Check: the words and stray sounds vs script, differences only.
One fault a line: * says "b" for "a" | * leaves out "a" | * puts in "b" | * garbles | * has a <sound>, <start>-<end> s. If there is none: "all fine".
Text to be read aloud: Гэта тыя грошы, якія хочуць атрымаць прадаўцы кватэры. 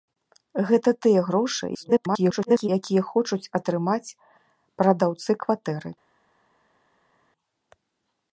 * garbles